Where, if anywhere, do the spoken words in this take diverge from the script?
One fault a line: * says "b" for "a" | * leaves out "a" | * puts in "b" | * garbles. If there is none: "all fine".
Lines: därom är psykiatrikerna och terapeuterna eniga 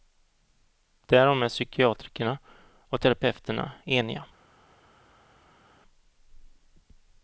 all fine